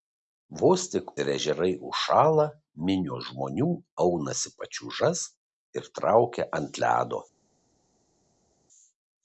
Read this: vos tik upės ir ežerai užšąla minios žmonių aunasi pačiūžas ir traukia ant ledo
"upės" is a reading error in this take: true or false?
true